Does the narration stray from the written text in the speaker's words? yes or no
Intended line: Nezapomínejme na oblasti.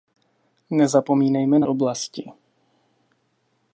no